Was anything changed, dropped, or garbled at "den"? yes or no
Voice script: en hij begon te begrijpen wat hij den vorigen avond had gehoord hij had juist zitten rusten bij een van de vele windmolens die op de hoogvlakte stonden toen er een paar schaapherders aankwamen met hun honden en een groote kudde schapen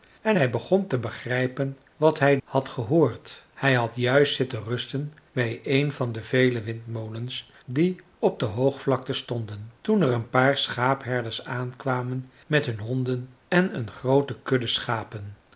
yes